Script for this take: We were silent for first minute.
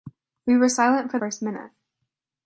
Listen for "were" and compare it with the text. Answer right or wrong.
right